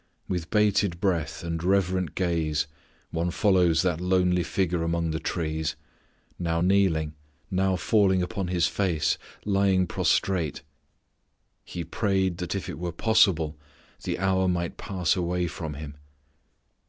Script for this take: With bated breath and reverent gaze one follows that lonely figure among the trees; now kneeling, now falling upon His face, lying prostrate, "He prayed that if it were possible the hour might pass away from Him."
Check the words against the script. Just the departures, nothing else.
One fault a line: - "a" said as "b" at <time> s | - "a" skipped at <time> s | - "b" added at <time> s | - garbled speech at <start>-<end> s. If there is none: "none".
none